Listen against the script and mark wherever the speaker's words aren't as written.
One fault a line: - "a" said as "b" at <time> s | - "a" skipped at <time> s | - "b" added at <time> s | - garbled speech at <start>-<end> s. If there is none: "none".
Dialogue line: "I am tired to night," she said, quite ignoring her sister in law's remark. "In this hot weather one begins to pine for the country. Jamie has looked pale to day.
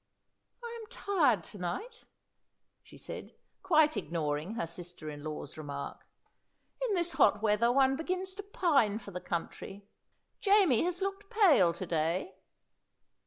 none